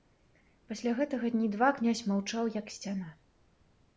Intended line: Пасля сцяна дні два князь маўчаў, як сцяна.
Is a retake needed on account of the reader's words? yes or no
yes